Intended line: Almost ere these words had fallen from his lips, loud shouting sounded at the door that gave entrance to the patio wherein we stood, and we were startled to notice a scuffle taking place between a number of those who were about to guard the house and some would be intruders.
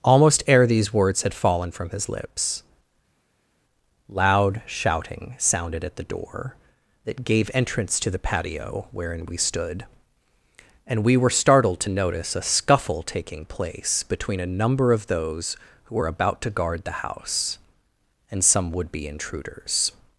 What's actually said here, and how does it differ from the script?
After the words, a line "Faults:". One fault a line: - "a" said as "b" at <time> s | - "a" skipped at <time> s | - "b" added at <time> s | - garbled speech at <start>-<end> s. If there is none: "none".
Almost ere these words had fallen from his lips, loud shouting sounded at the door that gave entrance to the patio wherein we stood, and we were startled to notice a scuffle taking place between a number of those who were about to guard the house and some would be intruders.
Faults:
none